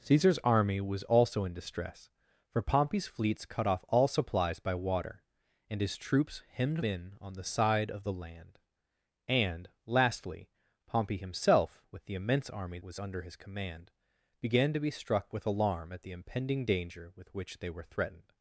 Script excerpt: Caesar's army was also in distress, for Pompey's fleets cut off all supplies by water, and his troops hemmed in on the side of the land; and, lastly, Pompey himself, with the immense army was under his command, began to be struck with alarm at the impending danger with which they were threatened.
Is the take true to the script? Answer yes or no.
yes